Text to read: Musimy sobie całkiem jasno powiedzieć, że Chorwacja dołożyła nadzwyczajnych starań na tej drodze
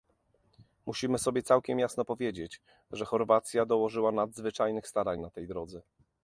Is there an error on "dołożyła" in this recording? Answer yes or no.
no